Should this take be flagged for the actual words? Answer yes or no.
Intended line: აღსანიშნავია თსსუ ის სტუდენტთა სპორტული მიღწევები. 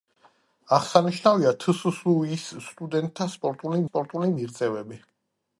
yes